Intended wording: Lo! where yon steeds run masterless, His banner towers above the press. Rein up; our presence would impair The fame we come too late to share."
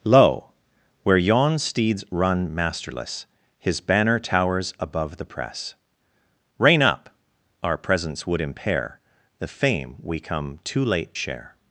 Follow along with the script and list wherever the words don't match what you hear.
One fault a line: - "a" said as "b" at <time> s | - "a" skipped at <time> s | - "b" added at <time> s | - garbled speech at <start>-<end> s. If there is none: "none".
- "to" skipped at 11.2 s